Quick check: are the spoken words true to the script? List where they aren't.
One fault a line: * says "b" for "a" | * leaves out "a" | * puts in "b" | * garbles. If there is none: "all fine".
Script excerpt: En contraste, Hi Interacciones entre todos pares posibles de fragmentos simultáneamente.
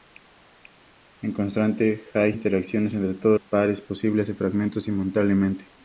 all fine